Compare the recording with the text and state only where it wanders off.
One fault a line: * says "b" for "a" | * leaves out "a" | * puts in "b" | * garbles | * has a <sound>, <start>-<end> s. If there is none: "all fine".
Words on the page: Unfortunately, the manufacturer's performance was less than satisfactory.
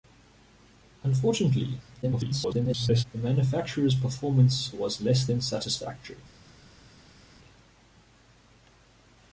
* garbles